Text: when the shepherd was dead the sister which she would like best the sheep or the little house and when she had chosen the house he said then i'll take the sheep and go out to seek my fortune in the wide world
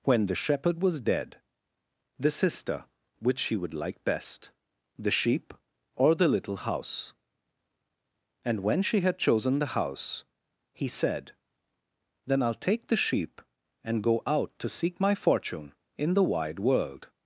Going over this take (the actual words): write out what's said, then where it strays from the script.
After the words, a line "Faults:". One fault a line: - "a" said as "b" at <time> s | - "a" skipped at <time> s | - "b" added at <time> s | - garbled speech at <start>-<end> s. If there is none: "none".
when the shepherd was dead the sister which she would like best the sheep or the little house and when she had chosen the house he said then i'll take the sheep and go out to seek my fortune in the wide world
Faults:
none